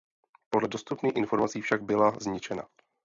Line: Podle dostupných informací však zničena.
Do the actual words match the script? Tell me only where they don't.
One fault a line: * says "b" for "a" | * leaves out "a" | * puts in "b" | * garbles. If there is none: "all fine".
* puts in "byla"